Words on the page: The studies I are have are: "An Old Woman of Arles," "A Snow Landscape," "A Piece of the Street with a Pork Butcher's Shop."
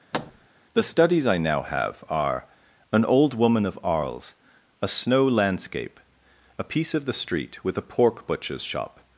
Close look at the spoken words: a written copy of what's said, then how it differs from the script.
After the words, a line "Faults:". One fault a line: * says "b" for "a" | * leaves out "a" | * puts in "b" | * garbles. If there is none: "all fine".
The studies I now have are: "An Old Woman of Arles," "A Snow Landscape," "A Piece of the Street with a Pork Butcher's Shop."
Faults:
* says "now" for "are"